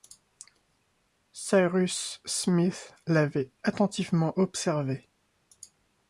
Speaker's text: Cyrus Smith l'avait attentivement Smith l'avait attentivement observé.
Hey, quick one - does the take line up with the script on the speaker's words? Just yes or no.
no